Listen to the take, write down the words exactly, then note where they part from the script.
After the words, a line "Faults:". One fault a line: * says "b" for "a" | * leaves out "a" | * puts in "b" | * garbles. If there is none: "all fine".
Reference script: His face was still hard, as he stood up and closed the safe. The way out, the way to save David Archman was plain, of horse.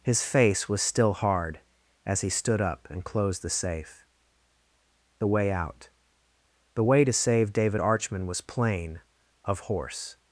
His face was still hard, as he stood up and closed the safe. The way out, the way to save David Archman was plain, of horse.
Faults:
all fine